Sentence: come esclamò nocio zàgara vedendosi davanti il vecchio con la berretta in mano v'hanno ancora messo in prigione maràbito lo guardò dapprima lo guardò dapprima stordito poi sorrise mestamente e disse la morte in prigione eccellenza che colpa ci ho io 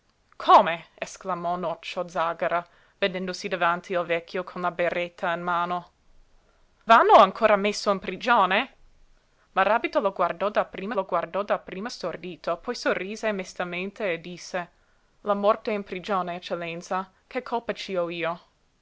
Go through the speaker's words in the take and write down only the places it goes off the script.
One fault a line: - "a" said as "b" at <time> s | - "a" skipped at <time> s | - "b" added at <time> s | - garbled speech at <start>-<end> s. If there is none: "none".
none